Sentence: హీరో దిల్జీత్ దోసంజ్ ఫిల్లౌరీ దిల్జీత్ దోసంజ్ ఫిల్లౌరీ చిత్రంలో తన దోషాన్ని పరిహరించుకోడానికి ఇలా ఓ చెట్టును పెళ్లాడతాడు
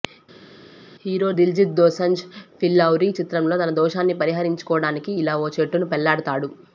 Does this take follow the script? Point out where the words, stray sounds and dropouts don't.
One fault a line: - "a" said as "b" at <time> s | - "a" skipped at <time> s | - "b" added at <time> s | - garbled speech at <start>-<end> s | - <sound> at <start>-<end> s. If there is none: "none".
- "దిల్జీత్ దోసంజ్ ఫిల్లౌరీ" skipped at 3.1 s